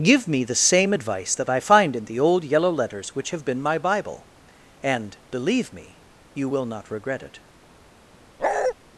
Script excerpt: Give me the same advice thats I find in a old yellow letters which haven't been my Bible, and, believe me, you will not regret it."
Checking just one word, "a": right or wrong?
wrong